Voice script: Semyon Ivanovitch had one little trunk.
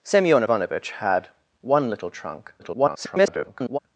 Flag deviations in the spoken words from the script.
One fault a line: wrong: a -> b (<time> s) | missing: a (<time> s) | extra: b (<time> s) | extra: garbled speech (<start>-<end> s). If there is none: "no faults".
extra: garbled speech (2.6-3.8 s)